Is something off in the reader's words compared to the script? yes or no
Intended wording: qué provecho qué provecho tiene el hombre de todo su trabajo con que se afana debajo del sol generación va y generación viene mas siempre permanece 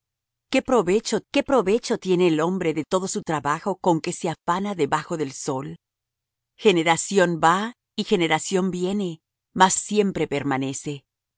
no